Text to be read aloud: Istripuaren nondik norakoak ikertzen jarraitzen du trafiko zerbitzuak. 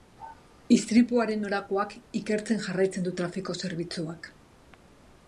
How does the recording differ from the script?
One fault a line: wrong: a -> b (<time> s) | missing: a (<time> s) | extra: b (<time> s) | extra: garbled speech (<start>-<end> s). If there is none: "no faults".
missing: nondik (1.4 s)